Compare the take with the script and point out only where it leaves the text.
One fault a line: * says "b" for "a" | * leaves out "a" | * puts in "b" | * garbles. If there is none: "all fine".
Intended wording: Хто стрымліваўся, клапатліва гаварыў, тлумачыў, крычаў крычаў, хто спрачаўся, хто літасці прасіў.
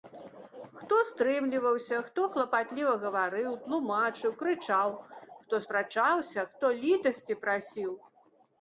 * puts in "хто"
* leaves out "крычаў"